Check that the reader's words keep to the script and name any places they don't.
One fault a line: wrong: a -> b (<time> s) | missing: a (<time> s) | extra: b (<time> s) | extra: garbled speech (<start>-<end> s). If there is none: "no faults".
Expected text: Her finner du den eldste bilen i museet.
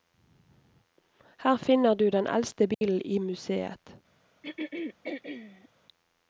no faults